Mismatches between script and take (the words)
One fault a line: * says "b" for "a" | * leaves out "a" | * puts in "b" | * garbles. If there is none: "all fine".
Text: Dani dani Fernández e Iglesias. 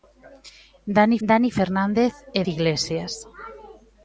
all fine